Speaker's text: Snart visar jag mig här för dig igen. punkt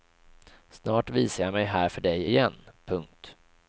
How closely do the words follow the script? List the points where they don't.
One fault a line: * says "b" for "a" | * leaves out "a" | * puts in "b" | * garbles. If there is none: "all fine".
all fine